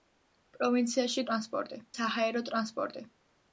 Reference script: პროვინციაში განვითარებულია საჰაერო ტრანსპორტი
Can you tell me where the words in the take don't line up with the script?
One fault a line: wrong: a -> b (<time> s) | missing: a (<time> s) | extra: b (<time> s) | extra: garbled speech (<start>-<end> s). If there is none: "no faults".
wrong: განვითარებულია -> ტრანსპორტი (1.3 s)